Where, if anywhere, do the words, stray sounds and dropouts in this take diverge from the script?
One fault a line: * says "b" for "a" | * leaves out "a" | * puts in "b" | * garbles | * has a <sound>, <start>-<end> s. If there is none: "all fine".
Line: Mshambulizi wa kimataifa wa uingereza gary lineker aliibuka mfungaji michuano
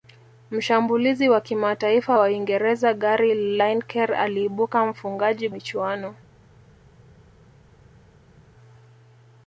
all fine